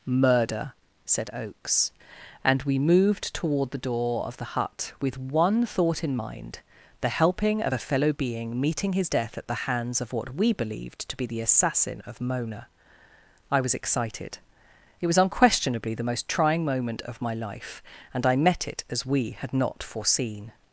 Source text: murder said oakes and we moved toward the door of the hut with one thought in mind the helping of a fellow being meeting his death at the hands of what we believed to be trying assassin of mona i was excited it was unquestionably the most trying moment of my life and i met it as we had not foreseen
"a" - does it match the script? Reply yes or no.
yes